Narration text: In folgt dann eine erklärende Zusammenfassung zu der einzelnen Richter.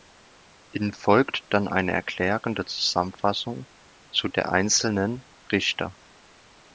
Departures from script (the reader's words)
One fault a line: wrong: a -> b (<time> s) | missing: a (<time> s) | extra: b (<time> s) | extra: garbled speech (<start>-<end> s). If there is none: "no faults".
no faults